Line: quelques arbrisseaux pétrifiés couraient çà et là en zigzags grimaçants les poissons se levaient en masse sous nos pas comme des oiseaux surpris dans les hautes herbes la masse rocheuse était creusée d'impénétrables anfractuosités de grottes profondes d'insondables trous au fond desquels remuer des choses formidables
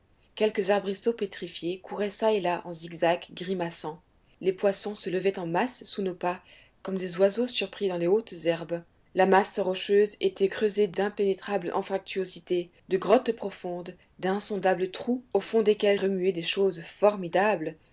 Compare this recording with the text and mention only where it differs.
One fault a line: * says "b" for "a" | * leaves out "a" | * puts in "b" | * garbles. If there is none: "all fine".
all fine